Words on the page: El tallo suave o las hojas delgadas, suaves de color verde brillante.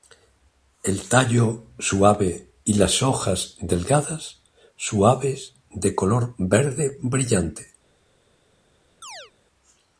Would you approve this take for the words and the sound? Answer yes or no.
no